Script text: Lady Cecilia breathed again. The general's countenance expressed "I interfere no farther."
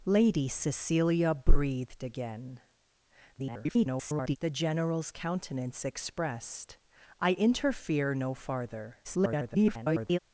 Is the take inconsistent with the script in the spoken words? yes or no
yes